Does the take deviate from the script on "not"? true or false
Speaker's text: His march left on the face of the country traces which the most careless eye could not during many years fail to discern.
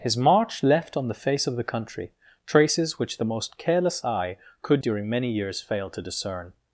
true